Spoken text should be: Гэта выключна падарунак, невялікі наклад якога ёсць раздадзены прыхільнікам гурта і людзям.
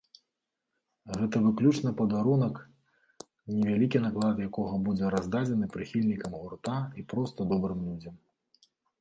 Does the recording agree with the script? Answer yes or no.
no